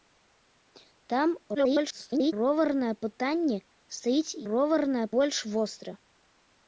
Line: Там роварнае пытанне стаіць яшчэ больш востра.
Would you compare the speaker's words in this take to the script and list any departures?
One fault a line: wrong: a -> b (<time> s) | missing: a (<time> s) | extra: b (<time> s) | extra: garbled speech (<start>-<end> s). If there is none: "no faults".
extra: garbled speech (1.5-2.3 s)
wrong: яшчэ -> роварнае (4.5 s)